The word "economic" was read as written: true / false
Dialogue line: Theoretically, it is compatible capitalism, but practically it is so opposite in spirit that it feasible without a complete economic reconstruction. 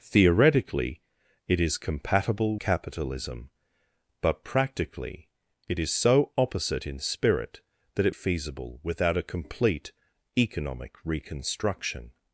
true